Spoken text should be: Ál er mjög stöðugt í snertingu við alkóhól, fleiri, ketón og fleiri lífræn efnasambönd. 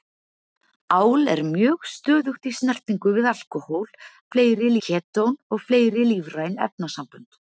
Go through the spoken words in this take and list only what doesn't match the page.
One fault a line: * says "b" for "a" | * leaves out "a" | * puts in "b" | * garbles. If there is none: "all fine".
all fine